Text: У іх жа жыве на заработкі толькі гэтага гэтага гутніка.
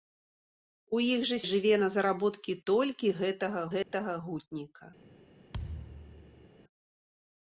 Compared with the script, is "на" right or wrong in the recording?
right